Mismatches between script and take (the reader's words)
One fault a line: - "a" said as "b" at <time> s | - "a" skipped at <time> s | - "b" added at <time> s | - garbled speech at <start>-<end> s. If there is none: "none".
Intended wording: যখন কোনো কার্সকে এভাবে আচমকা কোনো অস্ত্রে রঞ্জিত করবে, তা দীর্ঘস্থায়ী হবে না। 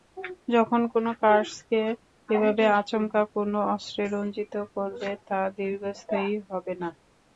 none